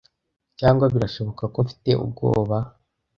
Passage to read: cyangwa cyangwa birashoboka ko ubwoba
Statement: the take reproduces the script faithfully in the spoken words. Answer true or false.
false